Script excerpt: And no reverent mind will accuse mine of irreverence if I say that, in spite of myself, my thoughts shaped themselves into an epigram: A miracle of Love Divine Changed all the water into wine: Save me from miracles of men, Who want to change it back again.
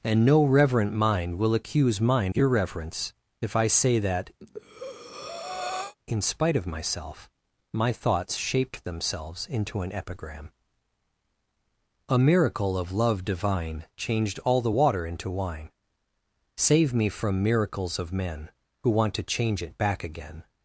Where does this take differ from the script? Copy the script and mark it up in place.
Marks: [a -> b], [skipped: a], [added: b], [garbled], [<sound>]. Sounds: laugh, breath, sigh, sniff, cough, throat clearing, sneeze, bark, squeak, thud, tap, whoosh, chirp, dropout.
And no reverent mind will accuse mine [skipped: of] irreverence if I say that, [breath] in spite of myself, my thoughts shaped themselves into an epigram: A miracle of Love Divine Changed all the water into wine: Save me from miracles of men, Who want to change it back again.